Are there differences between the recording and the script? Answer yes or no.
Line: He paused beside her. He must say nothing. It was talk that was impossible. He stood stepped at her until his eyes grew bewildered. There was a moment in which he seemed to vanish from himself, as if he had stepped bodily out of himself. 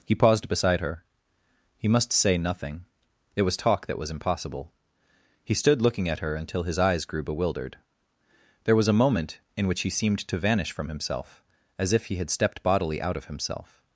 yes